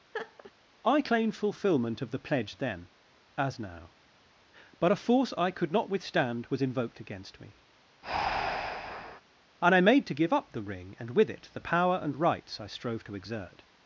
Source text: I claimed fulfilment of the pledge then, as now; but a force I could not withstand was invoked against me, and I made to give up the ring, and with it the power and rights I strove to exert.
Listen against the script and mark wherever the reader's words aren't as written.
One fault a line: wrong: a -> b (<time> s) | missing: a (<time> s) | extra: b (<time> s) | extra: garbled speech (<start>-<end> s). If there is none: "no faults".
no faults